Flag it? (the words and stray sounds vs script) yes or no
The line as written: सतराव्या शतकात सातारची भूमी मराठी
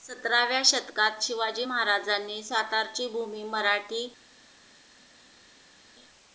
yes